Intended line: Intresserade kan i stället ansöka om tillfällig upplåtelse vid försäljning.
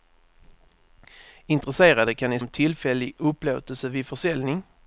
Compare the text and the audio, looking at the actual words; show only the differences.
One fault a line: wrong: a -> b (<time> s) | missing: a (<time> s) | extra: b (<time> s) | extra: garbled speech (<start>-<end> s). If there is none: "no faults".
missing: stället ansöka (2.4 s)